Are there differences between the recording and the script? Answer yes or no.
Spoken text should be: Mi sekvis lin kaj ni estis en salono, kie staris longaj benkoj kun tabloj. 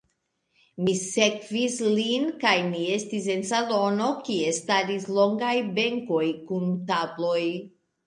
no